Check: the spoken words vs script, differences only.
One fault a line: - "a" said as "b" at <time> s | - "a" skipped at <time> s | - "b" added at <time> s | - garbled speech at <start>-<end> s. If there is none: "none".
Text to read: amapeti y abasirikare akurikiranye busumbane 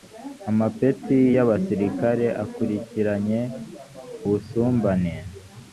none